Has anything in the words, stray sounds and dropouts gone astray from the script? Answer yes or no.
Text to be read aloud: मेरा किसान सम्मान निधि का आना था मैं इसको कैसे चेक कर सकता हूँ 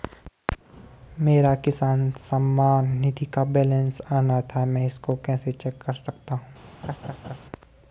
yes